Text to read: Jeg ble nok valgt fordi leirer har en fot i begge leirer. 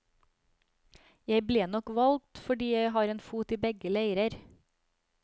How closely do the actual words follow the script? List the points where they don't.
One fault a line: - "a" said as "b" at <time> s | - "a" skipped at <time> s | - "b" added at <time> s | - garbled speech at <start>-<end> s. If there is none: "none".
- "leirer" said as "jeg" at 2.7 s